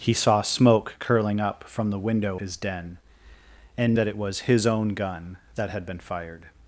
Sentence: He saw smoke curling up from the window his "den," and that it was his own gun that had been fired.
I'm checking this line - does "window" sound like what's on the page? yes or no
yes